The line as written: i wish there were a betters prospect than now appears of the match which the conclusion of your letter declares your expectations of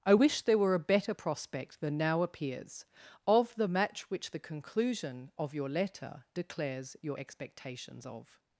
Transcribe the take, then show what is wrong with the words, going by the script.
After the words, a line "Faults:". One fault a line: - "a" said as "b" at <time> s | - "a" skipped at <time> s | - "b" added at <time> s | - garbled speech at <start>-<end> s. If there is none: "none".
i wish there were a better prospect than now appears of the match which the conclusion of your letter declares your expectations of
Faults:
- "betters" said as "better" at 0.8 s